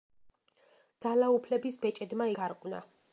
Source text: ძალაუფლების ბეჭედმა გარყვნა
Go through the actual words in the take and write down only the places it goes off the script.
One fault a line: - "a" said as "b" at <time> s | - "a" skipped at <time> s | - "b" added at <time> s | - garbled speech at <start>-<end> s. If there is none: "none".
none